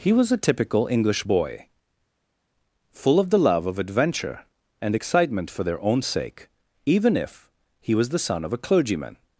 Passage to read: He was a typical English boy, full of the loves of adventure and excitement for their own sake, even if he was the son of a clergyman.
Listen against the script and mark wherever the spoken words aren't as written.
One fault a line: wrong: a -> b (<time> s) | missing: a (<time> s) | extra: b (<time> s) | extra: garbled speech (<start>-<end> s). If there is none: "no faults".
wrong: loves -> love (3.3 s)